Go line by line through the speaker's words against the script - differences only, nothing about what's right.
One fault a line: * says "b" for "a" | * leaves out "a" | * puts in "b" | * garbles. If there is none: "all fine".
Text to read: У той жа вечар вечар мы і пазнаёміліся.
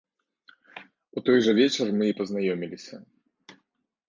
* leaves out "вечар"